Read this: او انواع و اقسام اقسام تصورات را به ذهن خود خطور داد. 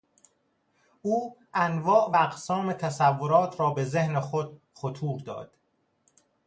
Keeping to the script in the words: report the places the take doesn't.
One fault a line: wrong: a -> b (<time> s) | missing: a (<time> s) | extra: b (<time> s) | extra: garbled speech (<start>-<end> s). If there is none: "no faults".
missing: اقسام (2.7 s)